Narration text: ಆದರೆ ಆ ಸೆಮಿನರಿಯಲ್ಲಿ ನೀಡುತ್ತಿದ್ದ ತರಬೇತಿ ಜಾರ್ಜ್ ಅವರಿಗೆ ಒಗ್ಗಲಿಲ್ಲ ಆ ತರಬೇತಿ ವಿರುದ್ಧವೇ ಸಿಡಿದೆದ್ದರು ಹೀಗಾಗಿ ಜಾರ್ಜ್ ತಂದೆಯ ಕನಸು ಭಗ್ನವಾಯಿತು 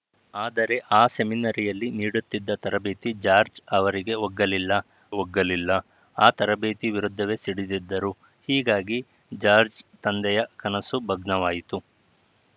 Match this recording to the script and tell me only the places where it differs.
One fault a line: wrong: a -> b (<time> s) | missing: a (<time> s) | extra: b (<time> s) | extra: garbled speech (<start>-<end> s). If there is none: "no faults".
extra: ಒಗ್ಗಲಿಲ್ಲ (5.2 s)